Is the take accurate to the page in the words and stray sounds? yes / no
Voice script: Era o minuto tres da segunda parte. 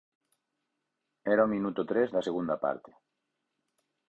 yes